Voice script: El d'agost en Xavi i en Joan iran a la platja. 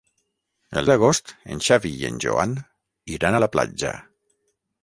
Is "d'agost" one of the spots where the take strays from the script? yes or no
no